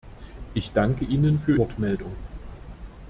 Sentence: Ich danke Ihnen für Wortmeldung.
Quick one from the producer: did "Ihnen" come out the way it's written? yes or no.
yes